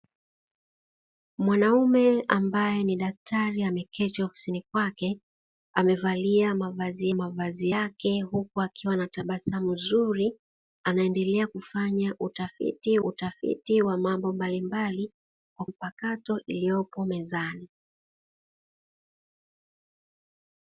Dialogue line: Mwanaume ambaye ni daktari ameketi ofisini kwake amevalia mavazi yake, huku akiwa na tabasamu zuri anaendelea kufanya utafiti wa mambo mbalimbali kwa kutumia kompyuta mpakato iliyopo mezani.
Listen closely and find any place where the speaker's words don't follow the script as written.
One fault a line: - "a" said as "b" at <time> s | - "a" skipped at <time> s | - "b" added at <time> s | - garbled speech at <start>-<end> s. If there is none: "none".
- "mavazi" added at 7.1 s
- "utafiti" added at 13.0 s
- "kutumia kompyuta" skipped at 15.7 s